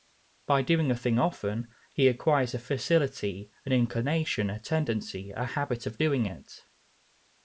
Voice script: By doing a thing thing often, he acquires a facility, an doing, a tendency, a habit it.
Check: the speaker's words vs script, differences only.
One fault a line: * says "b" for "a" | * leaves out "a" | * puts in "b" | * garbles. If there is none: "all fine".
* leaves out "thing"
* says "inclination" for "doing"
* puts in "of doing"